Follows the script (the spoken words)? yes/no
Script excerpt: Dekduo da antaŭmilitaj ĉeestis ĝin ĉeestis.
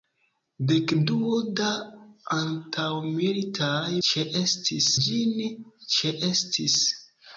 yes